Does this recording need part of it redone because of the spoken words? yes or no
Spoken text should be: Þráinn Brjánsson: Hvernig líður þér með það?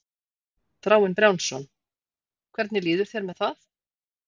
no